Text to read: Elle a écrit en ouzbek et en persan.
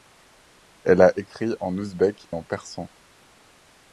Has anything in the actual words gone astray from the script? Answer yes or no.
yes